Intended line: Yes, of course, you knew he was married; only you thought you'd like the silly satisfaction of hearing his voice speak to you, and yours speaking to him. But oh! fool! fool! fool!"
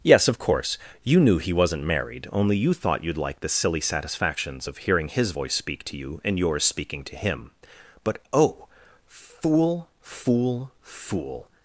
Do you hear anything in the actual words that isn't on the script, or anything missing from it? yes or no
yes